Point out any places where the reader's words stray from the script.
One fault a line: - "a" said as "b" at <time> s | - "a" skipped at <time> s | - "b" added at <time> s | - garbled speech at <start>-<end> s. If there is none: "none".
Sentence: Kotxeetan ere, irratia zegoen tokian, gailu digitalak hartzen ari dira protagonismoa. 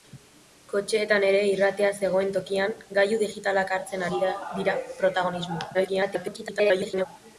- garbled speech at 5.7-7.1 s